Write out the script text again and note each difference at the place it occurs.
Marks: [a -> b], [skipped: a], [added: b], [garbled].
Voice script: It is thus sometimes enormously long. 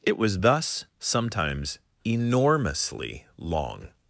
It [is -> was] thus sometimes enormously long.